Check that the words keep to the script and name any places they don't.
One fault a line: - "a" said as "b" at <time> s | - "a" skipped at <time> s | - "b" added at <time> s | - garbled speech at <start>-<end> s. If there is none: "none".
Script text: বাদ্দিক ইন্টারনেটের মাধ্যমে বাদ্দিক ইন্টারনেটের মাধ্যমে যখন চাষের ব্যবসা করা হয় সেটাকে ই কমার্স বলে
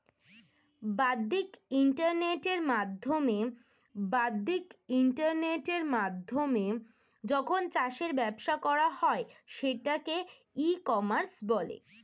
none